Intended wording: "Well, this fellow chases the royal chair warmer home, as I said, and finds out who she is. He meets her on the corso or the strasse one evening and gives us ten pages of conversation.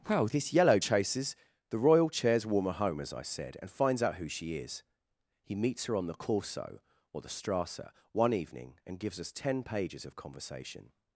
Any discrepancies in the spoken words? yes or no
yes